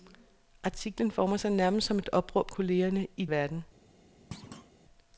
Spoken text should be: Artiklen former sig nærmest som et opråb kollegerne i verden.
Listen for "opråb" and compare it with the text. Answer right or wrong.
right